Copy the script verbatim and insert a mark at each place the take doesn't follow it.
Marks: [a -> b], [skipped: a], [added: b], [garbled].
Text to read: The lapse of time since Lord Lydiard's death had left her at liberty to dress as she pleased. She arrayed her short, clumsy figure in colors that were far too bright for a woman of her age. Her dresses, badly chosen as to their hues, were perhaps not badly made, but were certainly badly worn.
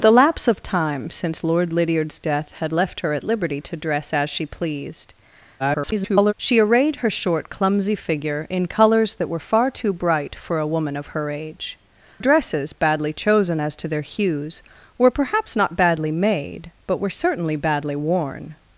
The lapse of time since Lord Lydiard's death had left her at liberty to dress as she pleased. [garbled] She arrayed her short, clumsy figure in colors that were far too bright for a woman of her age. [skipped: Her] dresses, badly chosen as to their hues, were perhaps not badly made, but were certainly badly worn.